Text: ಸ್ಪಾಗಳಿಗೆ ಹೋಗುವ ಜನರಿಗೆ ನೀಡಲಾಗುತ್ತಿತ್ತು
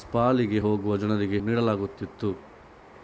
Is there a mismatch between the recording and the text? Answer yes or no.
no